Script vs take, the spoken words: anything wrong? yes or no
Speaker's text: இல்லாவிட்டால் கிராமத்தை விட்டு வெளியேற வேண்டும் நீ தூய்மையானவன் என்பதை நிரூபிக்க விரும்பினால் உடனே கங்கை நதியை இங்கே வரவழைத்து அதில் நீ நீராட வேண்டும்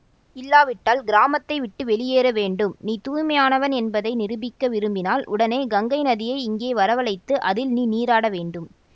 no